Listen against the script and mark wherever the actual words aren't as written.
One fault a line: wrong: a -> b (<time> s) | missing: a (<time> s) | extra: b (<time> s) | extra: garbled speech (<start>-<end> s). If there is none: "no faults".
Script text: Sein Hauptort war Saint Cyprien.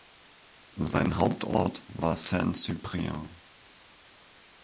no faults